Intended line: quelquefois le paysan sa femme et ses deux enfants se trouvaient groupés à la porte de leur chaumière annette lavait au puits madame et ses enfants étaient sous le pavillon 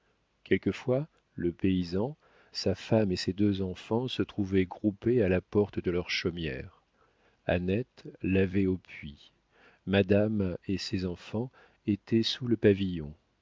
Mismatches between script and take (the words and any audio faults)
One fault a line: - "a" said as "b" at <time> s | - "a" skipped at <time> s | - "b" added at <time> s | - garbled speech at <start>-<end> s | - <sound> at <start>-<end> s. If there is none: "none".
none